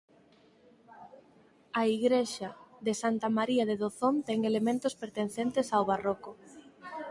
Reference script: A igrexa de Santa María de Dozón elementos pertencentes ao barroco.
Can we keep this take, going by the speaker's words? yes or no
no